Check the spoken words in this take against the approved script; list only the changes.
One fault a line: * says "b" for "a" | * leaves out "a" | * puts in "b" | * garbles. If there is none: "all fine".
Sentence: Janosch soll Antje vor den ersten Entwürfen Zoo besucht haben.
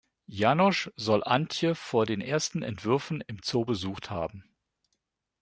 * puts in "im"